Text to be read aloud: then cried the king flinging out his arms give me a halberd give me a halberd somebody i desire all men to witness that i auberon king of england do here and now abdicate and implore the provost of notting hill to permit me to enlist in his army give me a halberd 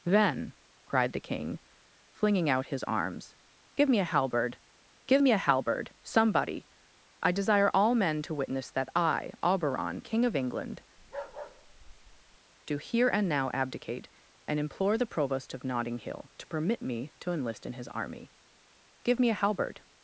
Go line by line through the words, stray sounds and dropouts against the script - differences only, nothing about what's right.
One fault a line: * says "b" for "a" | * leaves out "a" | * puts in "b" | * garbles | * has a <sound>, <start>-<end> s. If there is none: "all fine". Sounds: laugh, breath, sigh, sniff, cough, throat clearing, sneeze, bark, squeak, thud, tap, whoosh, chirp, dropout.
* has a bark, 11.0-12.4 s